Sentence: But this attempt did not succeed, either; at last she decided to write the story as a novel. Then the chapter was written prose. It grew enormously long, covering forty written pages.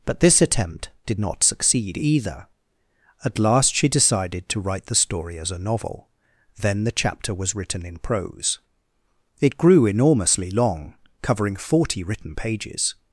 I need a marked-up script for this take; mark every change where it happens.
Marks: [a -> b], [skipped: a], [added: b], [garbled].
But this attempt did not succeed, either; at last she decided to write the story as a novel. Then the chapter was written [added: in] prose. It grew enormously long, covering forty written pages.